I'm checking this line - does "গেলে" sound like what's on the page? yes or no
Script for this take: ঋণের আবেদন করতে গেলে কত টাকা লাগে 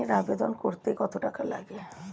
no